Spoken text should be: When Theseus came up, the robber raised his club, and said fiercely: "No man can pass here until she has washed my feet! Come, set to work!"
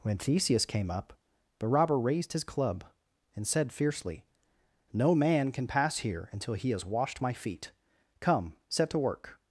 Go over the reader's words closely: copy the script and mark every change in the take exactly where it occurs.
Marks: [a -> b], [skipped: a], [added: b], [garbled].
When Theseus came up, the robber raised his club, and said fiercely: "No man can pass here until [she -> he] has washed my feet! Come, set to work!"